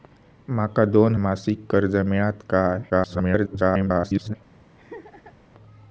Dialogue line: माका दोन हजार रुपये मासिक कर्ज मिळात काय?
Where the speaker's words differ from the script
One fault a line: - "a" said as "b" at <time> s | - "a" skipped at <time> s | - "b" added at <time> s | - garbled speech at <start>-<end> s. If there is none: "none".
- "हजार रुपये" skipped at 1.1 s
- garbled speech at 2.9-4.3 s